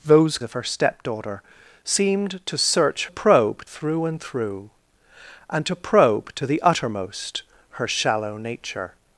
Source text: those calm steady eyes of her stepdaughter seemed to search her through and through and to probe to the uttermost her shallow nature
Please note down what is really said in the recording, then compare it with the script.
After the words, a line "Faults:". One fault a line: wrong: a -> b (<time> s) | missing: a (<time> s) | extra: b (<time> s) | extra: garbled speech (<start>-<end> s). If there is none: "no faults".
those of her stepdaughter seemed to search probe through and through and to probe to the uttermost her shallow nature
Faults:
missing: calm steady eyes (0.4 s)
wrong: her -> probe (3.1 s)